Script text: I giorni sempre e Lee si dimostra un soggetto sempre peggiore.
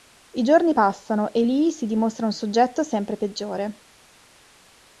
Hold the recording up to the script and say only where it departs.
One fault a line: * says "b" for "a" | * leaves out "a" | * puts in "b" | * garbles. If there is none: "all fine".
* says "passano" for "sempre"